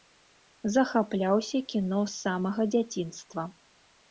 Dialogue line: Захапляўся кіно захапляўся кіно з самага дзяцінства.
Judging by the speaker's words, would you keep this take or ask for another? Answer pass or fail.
fail